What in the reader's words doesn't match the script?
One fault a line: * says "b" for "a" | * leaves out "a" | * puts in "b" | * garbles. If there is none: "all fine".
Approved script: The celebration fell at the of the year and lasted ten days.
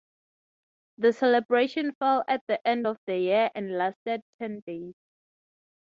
* puts in "end"